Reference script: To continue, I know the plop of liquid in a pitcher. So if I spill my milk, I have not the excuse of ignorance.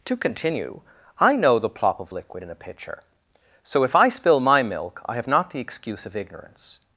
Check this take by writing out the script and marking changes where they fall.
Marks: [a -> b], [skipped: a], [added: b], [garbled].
To continue, I know the plop of liquid in a pitcher. So if I spill my milk, I have not the excuse of ignorance.